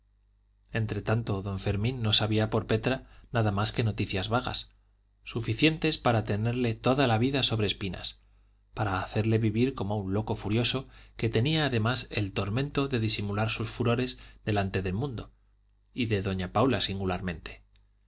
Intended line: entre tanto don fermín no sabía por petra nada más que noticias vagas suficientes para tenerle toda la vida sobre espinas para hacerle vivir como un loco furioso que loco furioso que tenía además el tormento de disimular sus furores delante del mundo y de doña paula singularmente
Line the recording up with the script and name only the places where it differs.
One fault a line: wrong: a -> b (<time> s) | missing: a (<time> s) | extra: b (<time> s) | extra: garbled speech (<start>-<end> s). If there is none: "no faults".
missing: loco furioso que (11.3 s)